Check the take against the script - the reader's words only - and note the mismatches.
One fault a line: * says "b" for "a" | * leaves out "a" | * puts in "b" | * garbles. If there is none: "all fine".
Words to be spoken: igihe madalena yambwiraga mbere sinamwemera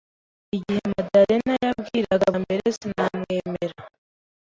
all fine